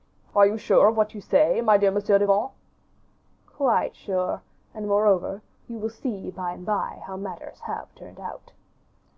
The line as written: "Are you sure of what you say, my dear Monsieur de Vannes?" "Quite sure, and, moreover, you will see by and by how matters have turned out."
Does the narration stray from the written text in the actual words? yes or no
no